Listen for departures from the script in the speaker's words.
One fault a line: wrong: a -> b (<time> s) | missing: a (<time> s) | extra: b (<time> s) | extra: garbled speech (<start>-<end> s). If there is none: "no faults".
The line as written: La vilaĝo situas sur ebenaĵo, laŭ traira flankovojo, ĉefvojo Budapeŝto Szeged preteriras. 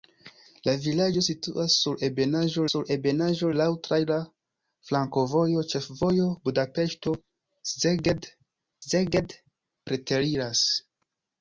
extra: sur ebenaĵo (2.7 s)
extra: Szeged (8.8 s)